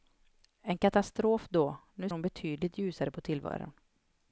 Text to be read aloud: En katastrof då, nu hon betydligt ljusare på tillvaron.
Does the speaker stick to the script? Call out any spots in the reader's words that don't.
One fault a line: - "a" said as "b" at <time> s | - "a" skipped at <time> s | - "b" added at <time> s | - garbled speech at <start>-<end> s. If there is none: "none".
none